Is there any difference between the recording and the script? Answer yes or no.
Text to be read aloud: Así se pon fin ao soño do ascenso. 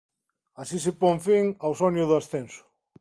no